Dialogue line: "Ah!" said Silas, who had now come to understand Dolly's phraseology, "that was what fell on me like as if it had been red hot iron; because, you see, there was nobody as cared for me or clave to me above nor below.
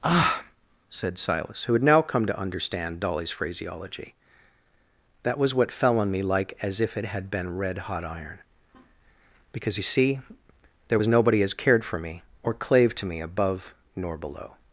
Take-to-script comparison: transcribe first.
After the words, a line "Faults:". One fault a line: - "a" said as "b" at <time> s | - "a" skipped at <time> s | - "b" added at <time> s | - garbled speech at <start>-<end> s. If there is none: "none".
"Ah!" said Silas, who had now come to understand Dolly's phraseology, "that was what fell on me like as if it had been red hot iron; because, you see, there was nobody as cared for me or clave to me above nor below.
Faults:
none